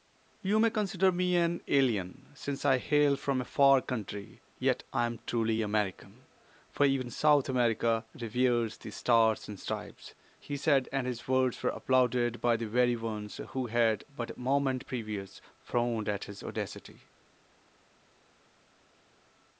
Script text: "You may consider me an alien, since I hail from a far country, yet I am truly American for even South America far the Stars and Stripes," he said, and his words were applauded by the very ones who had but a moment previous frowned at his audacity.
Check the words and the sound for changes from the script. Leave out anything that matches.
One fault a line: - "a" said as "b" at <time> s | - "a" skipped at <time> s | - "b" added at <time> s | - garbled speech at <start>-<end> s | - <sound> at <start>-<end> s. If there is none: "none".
- "far" said as "reveres" at 8.2 s